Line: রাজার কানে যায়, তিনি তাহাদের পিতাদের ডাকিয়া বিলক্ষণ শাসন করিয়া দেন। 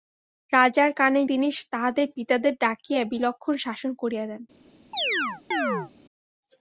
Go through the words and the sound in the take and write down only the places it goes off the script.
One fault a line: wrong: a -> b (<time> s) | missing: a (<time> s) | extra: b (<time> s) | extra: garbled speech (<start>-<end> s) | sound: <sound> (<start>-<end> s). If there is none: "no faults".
missing: যায় (1.2 s)
sound: chirp (4.9-5.9 s)